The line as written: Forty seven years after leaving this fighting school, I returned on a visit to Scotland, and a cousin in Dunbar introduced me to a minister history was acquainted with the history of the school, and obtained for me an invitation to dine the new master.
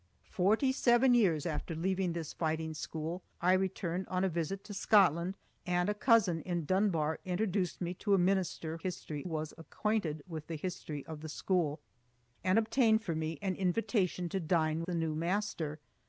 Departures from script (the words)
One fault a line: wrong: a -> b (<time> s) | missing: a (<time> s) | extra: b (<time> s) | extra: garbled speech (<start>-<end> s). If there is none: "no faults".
no faults